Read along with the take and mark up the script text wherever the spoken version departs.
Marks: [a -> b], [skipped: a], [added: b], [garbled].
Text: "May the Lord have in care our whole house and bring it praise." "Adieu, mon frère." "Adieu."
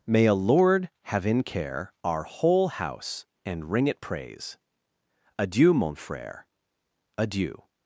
"May [the -> a] Lord have in care our whole house and [bring -> ring] it praise." "Adieu, mon frère." "Adieu."